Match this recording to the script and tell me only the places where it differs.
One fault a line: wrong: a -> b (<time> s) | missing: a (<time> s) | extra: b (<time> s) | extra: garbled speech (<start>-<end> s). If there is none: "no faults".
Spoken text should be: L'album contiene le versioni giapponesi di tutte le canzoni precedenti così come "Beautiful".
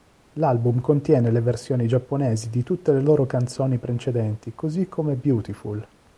extra: loro (3.0 s)